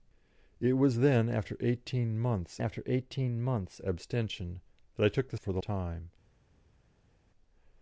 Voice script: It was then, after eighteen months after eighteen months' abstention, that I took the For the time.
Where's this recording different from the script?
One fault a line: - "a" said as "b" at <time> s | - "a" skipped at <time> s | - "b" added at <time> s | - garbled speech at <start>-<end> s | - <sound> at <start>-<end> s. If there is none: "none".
none